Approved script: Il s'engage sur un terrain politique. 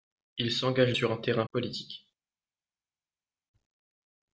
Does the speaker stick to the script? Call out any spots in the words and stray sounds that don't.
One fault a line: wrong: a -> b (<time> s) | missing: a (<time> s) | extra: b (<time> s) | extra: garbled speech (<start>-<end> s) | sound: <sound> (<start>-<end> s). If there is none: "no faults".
no faults